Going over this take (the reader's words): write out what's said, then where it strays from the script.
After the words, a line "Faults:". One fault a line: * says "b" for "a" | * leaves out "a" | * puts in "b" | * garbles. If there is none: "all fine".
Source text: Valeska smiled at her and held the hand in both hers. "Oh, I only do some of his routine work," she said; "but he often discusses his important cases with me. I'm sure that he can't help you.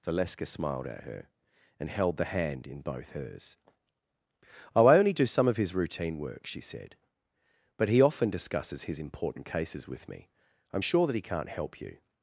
Valeska smiled at her and held the hand in both hers. "Oh, I only do some of his routine work," she said; "but he often discusses his important cases with me. I'm sure that he can't help you.
Faults:
all fine